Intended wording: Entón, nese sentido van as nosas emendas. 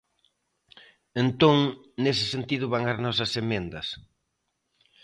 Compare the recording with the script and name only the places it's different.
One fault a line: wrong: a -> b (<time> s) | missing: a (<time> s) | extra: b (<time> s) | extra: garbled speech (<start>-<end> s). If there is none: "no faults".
no faults